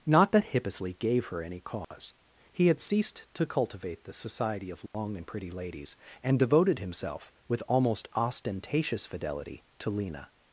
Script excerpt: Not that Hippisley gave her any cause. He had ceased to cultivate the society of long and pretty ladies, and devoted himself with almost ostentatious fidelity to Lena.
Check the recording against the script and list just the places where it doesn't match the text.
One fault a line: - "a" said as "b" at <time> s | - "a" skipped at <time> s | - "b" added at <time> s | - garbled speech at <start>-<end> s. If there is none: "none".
none